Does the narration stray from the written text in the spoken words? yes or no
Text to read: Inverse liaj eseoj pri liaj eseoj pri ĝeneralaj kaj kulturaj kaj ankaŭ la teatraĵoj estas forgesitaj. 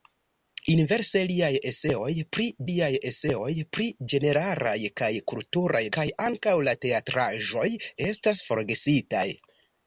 no